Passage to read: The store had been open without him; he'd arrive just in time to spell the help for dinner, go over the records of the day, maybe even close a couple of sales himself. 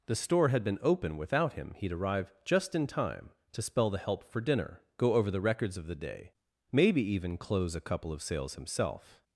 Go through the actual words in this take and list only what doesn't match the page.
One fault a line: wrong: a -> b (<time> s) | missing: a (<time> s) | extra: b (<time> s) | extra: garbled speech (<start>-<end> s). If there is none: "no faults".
no faults